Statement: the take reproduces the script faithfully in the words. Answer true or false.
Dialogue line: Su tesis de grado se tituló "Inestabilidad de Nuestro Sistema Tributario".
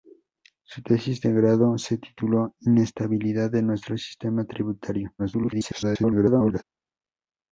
false